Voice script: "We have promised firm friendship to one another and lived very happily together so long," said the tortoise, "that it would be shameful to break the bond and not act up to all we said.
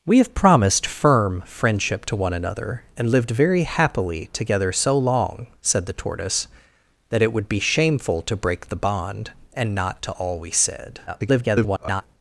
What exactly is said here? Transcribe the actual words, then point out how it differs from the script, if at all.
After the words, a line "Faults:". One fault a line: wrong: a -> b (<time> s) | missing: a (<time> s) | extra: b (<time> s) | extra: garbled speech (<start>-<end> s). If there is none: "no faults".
"We have promised firm friendship to one another and lived very happily together so long," said the tortoise, "that it would be shameful to break the bond and not to all we said. [garbled]
Faults:
missing: act up (10.0 s)
extra: garbled speech (11.1-12.0 s)